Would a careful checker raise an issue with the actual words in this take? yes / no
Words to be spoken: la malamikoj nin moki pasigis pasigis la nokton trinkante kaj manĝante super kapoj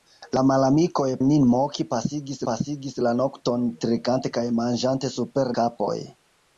no